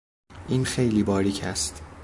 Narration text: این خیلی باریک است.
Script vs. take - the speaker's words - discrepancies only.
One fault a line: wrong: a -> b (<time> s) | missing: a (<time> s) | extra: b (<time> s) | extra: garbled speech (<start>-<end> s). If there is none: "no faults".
no faults